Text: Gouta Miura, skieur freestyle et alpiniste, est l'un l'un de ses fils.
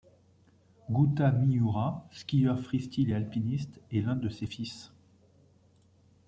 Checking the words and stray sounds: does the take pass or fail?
fail